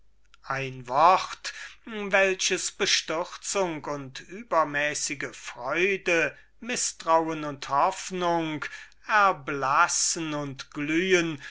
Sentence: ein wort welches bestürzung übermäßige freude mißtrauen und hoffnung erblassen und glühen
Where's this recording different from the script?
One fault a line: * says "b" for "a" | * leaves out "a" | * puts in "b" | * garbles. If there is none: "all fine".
* puts in "und"